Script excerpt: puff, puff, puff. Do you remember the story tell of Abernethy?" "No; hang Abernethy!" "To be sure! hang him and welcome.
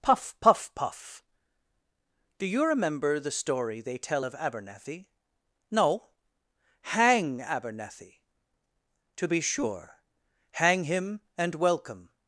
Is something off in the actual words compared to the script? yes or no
yes